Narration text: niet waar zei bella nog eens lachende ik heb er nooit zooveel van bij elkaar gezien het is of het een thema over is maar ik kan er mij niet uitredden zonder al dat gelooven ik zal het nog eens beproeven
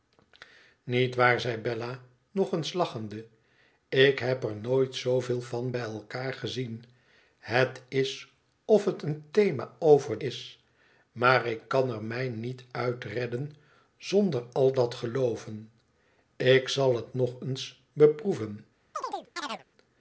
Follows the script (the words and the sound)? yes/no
no